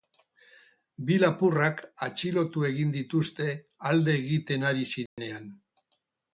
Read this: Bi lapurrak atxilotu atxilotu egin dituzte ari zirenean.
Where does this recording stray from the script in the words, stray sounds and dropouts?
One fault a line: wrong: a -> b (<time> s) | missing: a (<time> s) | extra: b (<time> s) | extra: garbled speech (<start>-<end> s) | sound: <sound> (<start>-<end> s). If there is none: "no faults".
missing: atxilotu (2.6 s)
extra: alde egiten (3.9 s)
sound: dropout (5.1-5.2 s)